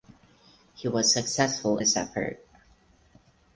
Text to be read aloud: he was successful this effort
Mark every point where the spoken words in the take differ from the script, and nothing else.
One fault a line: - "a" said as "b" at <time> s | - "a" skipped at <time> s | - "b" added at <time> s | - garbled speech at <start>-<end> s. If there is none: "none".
none